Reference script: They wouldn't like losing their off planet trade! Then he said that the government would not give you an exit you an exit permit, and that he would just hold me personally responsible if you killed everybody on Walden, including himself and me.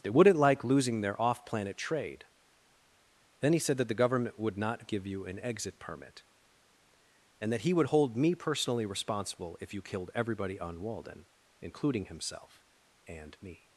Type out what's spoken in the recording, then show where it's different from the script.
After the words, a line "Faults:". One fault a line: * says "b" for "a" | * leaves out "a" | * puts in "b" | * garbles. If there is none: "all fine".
They wouldn't like losing their off planet trade! Then he said that the government would not give you an exit permit, and that he would hold me personally responsible if you killed everybody on Walden, including himself and me.
Faults:
* leaves out "you an exit"
* leaves out "just"